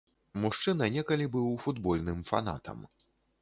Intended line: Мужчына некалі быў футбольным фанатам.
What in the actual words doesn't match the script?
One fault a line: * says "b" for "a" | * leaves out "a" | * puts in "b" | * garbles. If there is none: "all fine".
all fine